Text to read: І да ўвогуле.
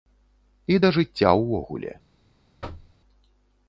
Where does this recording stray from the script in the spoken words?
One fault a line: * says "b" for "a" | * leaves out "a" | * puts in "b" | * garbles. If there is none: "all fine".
* puts in "жыцця"